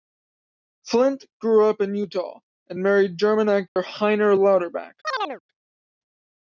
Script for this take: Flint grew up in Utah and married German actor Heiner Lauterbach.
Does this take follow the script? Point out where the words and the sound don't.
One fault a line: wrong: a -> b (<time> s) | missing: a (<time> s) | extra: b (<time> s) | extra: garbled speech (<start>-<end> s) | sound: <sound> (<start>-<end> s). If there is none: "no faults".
sound: dropout (3.7-3.8 s)
sound: chirp (5.0-5.4 s)